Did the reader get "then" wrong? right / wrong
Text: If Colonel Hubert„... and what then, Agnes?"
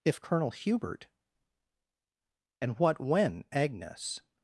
wrong